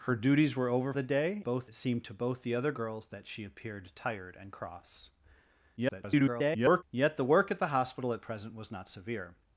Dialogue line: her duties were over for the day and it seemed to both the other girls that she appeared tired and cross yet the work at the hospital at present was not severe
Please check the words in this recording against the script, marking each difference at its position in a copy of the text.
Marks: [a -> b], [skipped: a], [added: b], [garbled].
her duties were over [skipped: for] the day [and -> both] it seemed to both the other girls that she appeared tired and cross [garbled] yet the work at the hospital at present was not severe